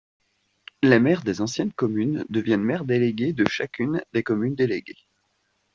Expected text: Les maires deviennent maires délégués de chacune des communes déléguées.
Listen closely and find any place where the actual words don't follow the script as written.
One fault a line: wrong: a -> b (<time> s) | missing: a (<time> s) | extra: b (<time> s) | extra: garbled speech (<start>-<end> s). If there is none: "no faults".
extra: des anciennes communes (1.2 s)